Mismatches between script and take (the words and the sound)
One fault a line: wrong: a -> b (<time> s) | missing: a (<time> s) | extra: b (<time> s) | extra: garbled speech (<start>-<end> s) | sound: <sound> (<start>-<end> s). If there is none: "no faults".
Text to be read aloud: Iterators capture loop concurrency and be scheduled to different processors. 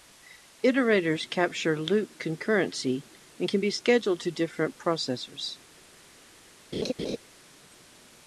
extra: can (3.5 s)
sound: laugh (6.7-7.2 s)